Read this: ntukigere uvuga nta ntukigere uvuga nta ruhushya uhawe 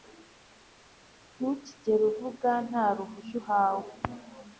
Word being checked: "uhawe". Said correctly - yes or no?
yes